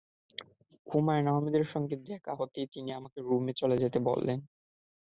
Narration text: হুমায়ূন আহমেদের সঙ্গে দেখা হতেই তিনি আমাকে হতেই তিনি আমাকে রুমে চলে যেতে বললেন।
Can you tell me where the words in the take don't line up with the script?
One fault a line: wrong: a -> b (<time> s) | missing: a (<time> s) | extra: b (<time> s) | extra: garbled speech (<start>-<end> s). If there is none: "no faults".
missing: হতেই তিনি আমাকে (3.2 s)